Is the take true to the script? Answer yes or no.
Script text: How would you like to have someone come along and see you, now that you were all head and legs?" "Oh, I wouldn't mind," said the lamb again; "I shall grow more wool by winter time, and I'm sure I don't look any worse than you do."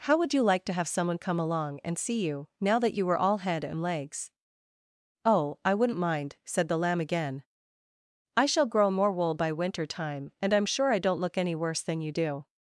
yes